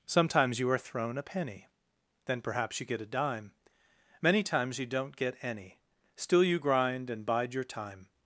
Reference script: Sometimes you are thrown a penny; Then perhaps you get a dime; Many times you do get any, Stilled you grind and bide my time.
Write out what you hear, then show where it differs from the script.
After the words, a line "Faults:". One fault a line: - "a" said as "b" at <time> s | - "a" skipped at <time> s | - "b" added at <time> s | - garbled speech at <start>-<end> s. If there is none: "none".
Sometimes you are thrown a penny; Then perhaps you get a dime; Many times you don't get any, Still you grind and bide your time.
Faults:
- "do" said as "don't" at 4.9 s
- "Stilled" said as "Still" at 6.1 s
- "my" said as "your" at 7.5 s